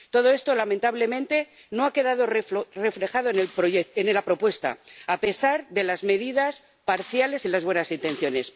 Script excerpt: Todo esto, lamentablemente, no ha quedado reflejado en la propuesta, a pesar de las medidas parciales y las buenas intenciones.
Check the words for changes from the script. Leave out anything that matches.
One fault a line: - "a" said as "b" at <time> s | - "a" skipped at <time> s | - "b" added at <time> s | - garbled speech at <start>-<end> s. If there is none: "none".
none